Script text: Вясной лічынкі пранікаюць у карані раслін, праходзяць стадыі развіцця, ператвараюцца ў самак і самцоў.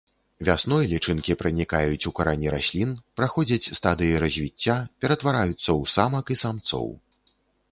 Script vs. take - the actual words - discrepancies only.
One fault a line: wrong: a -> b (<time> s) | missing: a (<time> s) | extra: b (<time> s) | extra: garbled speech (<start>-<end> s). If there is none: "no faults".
no faults